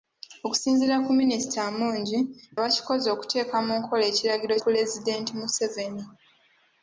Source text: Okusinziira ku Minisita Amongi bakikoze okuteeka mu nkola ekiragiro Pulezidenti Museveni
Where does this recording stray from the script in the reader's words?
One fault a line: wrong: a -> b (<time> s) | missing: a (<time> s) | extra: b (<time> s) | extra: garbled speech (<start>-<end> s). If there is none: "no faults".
no faults